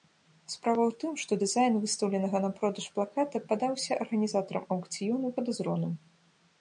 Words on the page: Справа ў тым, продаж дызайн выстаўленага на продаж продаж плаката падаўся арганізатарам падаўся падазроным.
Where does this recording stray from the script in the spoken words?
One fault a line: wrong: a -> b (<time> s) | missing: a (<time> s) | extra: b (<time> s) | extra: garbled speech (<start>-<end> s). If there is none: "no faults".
wrong: продаж -> што (1.2 s)
missing: продаж (2.9 s)
wrong: падаўся -> аўкцыёну (4.8 s)